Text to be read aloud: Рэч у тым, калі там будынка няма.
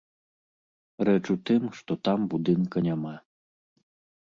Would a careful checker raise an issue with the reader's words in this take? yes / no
yes